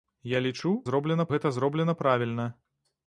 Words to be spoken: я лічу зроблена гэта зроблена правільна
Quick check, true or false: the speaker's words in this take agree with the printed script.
true